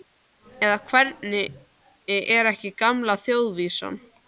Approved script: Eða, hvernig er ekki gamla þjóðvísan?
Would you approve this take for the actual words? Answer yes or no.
yes